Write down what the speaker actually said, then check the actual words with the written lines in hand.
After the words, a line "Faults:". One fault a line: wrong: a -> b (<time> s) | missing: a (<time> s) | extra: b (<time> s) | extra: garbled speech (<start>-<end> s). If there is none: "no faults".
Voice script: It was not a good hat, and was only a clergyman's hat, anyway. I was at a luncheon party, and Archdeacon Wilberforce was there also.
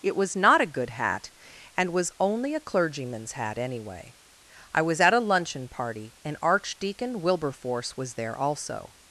It was not a good hat, and was only a clergyman's hat, anyway. I was at a luncheon party, and Archdeacon Wilberforce was there also.
Faults:
no faults